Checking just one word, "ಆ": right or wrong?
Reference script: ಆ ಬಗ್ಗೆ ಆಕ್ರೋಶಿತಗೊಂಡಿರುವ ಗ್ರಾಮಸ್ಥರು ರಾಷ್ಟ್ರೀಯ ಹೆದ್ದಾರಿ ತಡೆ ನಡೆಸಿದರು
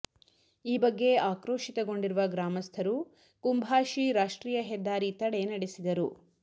wrong